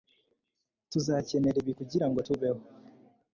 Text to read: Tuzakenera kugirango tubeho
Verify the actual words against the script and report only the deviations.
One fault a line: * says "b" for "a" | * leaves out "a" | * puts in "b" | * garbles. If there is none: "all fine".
* puts in "ibi"